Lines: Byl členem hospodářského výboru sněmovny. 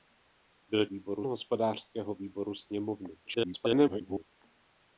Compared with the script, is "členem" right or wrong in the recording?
wrong